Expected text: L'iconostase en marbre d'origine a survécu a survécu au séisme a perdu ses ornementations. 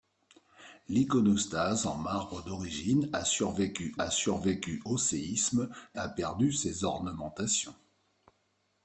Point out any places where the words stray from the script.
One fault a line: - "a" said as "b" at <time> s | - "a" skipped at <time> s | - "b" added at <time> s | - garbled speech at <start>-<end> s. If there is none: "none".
none